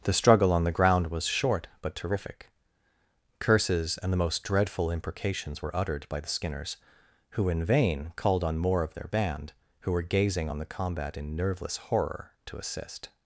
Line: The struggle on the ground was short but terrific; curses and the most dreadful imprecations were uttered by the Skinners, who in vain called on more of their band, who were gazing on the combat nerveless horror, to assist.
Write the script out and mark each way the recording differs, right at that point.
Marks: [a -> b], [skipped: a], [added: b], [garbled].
The struggle on the ground was short but terrific; curses and the most dreadful imprecations were uttered by the Skinners, who in vain called on more of their band, who were gazing on the combat [added: in] nerveless horror, to assist.